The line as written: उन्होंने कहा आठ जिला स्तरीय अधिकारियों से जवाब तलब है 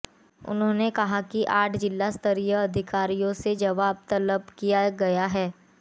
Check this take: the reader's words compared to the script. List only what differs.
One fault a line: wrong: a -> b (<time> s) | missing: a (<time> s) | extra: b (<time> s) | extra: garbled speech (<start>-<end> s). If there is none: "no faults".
extra: कि (1.2 s)
extra: किया गया (4.6 s)